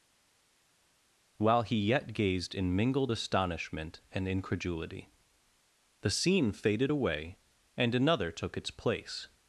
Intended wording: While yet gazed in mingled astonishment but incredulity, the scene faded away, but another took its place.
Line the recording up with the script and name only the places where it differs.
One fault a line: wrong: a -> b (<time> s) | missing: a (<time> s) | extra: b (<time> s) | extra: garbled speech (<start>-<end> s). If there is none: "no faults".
extra: he (1.6 s)
wrong: but -> and (4.1 s)
wrong: but -> and (7.8 s)